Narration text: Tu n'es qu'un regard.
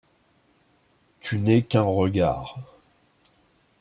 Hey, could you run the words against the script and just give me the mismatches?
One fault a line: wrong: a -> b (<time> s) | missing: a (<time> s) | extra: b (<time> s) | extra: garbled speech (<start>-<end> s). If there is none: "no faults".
no faults